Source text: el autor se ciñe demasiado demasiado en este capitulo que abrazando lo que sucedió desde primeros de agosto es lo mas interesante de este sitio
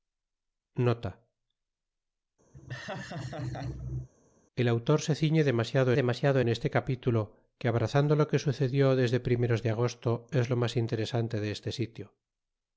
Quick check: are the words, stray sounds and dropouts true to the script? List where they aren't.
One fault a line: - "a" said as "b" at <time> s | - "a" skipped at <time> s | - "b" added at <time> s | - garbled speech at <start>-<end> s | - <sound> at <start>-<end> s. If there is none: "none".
- laugh at 2.5-4.1 s